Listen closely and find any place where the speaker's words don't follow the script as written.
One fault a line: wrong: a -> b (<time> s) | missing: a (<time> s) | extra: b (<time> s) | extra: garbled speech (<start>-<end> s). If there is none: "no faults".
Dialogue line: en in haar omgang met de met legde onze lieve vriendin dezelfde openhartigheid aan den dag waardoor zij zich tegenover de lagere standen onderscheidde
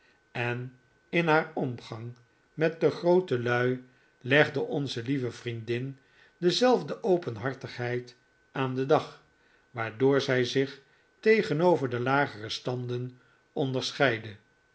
wrong: met -> grootelui (2.9 s)